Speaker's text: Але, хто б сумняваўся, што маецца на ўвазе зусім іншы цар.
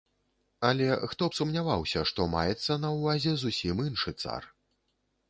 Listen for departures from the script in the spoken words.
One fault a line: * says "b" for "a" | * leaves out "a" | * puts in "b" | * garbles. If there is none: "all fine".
all fine